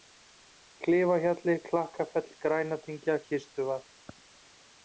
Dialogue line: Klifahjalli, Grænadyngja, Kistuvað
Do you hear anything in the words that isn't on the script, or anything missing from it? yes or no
yes